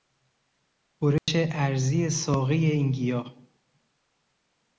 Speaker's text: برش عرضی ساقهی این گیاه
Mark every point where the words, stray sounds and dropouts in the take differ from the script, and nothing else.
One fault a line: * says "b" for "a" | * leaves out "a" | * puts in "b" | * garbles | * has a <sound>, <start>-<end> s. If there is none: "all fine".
* has a dropout, 1.2-1.3 s